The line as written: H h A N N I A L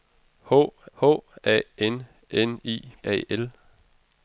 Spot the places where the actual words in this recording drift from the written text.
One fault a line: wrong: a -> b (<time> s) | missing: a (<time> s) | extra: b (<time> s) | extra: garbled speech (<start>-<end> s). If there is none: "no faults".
no faults